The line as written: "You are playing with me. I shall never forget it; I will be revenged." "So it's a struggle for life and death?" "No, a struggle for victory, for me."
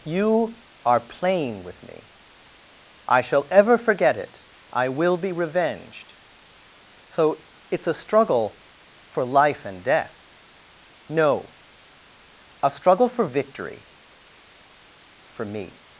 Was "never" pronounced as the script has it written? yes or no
no